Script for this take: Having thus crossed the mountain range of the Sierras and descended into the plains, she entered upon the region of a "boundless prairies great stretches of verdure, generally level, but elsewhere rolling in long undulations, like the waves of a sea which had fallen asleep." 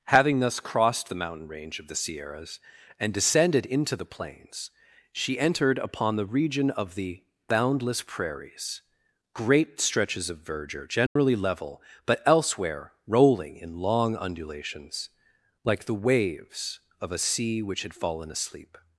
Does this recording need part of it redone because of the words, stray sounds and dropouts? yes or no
yes